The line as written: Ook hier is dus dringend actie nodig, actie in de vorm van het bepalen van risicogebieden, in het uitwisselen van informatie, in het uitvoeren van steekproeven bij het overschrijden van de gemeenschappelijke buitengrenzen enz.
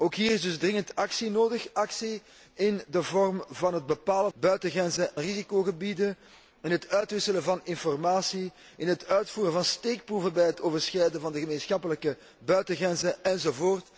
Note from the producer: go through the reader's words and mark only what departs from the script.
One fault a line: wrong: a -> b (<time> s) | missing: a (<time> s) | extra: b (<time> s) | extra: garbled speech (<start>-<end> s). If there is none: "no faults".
wrong: van -> buitengrenzen (4.3 s)